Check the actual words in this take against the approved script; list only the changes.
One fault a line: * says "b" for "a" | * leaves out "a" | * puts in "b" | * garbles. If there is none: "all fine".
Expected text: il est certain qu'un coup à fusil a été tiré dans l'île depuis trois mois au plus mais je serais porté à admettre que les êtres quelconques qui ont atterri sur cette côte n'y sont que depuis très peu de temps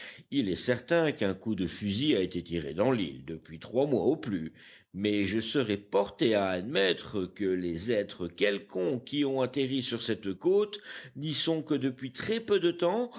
* says "de" for "à"